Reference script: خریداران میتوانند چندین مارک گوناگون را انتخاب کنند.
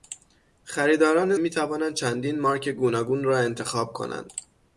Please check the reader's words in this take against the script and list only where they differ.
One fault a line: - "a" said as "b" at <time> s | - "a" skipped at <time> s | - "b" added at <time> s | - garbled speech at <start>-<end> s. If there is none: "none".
none